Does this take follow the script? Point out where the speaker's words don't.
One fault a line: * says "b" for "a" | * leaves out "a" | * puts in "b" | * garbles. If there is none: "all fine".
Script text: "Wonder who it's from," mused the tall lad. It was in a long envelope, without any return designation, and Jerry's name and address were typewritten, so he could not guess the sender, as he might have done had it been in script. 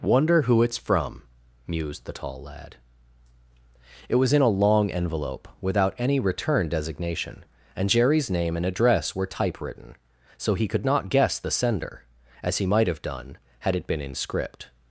all fine